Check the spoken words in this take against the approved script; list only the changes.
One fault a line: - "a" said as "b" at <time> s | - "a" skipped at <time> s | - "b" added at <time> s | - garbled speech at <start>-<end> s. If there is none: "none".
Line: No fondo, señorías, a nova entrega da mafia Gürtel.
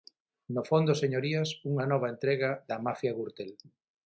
- "a" said as "unha" at 1.7 s